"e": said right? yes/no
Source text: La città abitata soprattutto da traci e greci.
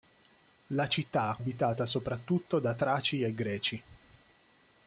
yes